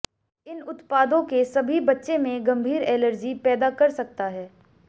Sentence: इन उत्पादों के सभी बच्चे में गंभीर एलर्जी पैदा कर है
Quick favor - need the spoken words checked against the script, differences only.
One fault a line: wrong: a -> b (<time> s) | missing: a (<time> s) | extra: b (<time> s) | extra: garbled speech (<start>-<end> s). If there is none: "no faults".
extra: सकता (3.9 s)